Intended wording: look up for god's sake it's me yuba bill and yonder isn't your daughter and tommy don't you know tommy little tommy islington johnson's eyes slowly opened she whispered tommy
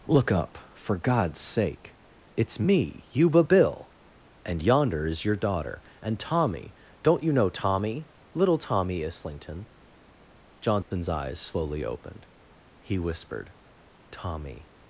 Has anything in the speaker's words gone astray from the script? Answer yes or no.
yes